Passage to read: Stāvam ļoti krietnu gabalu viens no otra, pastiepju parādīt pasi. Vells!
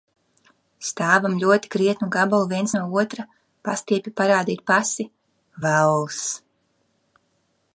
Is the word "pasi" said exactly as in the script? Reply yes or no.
yes